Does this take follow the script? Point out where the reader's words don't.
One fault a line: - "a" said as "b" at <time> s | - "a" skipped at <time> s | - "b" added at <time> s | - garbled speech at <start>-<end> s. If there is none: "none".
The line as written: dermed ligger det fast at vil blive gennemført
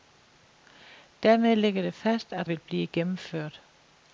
none